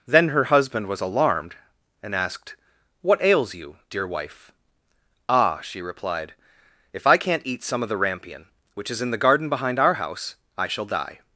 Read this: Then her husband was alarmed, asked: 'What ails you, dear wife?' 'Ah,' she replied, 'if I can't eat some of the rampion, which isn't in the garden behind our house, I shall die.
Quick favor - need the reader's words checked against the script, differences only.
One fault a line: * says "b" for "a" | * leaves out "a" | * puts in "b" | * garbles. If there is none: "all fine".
* puts in "and"
* says "is" for "isn't"